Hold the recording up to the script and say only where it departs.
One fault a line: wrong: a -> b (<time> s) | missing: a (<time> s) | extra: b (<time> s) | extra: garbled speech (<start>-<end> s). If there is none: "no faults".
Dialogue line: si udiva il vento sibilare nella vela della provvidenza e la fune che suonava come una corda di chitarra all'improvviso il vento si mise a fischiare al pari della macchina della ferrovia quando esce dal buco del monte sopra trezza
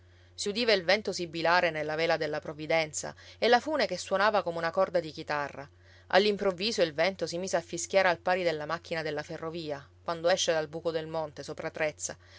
no faults